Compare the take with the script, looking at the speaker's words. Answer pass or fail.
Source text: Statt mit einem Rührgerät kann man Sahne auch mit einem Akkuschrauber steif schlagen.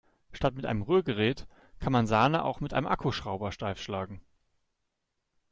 pass